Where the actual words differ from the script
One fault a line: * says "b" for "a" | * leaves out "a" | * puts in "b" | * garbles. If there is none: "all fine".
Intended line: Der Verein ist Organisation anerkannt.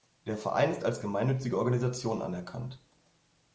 * puts in "als gemeinnützige"